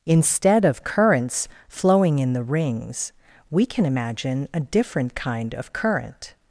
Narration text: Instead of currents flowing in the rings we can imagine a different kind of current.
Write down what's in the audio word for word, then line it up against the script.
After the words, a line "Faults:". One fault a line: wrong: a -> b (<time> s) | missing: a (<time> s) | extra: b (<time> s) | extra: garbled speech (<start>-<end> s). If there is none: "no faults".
Instead of currents flowing in the rings we can imagine a different kind of current.
Faults:
no faults